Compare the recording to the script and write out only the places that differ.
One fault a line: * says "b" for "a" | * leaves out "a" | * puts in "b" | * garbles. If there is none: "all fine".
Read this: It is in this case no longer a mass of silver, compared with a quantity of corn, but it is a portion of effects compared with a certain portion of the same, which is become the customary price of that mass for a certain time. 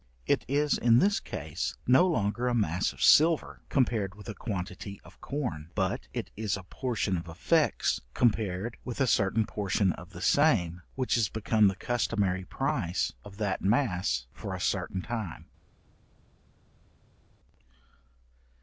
all fine